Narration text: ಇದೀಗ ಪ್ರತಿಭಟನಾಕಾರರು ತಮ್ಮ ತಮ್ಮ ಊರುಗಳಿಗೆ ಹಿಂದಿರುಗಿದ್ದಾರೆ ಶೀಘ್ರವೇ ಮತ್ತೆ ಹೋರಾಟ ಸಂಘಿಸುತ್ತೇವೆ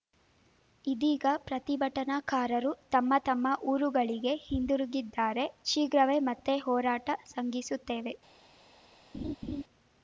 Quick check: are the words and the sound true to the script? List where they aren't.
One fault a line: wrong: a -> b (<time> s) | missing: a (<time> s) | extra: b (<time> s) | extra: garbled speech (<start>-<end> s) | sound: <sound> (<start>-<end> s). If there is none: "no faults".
sound: laugh (9.1-9.6 s)